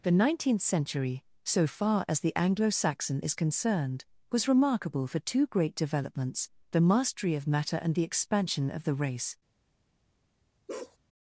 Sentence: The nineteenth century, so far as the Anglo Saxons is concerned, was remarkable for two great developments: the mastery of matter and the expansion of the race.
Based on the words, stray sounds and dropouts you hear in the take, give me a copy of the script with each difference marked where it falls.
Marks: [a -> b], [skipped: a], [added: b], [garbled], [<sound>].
The nineteenth century, so far as the Anglo [Saxons -> Saxon] is concerned, was remarkable for two great developments: the mastery of matter and the expansion of the race. [bark]